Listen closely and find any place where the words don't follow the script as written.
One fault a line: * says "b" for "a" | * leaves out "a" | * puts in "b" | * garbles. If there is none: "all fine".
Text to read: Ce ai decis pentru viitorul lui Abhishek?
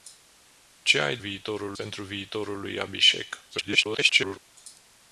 * says "viitorul" for "decis"
* garbles